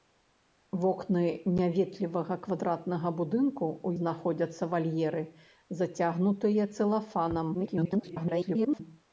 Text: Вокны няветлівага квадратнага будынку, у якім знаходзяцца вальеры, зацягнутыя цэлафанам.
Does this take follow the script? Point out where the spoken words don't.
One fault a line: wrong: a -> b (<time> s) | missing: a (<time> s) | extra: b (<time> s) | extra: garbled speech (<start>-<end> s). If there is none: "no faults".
missing: якім (3.9 s)
extra: garbled speech (7.5-8.8 s)